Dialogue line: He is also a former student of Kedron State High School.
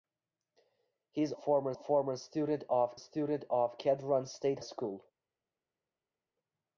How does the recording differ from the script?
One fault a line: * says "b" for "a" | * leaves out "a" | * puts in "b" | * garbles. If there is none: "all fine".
* says "former" for "also"
* puts in "student of"
* leaves out "High"